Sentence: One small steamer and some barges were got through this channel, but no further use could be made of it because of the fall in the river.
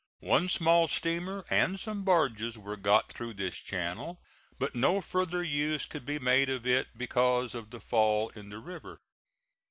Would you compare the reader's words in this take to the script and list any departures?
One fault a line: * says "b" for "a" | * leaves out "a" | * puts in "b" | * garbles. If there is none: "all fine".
all fine